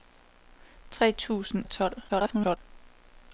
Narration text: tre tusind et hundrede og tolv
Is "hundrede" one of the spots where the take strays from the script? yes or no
yes